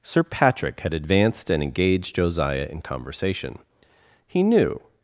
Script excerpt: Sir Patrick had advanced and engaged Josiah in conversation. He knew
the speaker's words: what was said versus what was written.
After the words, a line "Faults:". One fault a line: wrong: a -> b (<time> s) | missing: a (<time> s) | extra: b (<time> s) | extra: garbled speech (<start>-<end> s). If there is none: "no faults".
Sir Patrick had advanced and engaged Josiah in conversation. He knew
Faults:
no faults